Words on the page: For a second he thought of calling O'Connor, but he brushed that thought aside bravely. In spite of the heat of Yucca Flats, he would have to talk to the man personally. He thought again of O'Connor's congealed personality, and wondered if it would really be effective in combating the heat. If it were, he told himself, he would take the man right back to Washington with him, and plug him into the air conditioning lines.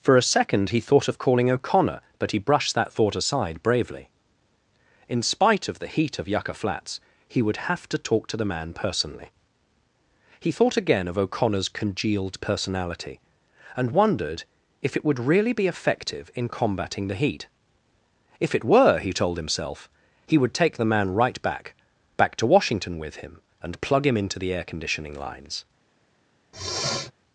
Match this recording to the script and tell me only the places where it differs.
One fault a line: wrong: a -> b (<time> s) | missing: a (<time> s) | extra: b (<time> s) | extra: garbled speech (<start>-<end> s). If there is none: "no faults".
extra: back (22.2 s)